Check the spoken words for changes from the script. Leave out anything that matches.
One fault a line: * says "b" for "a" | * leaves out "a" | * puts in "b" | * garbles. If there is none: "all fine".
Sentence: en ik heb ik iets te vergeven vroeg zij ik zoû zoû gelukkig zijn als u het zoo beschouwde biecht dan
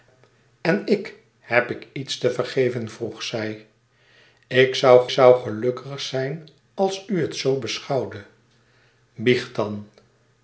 all fine